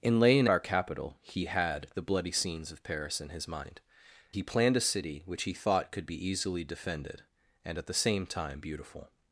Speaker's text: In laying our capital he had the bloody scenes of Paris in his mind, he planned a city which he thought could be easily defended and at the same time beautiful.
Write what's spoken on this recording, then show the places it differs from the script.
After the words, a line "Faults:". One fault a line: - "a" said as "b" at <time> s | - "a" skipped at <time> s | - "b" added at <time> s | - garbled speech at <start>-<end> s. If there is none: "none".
In laying our capital he had the bloody scenes of Paris in his mind, he planned a city which he thought could be easily defended and at the same time beautiful.
Faults:
none